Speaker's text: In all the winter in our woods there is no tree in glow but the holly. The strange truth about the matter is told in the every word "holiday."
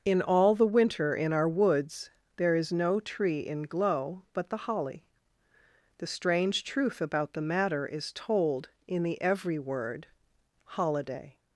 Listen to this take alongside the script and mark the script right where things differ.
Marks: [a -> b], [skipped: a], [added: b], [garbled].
In all the winter in our woods there is no tree in glow but the holly. The strange truth about the matter is told in the every word "holiday."